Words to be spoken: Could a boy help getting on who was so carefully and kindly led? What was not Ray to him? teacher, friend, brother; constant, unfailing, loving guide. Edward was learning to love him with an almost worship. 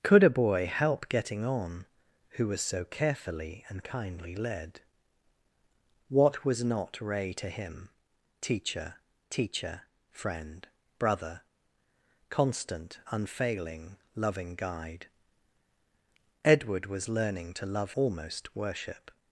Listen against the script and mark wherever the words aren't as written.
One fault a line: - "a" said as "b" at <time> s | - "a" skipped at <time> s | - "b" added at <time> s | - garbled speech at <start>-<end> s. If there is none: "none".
- "teacher" added at 9.3 s
- "him with an" skipped at 17.9 s